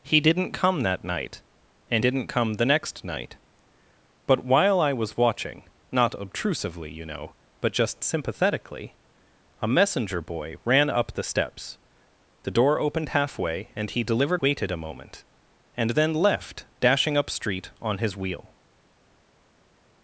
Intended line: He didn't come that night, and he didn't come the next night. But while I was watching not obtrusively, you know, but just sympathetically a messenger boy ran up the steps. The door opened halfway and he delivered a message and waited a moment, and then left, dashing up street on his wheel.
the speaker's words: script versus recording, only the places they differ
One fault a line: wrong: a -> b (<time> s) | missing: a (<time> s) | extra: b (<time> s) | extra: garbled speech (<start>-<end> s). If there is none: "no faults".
missing: he (2.0 s)
missing: a message and (14.4 s)